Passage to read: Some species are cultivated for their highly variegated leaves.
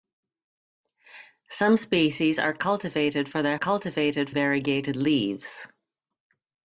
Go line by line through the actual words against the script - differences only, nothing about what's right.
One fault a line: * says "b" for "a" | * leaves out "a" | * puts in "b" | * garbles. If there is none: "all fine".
* says "cultivated" for "highly"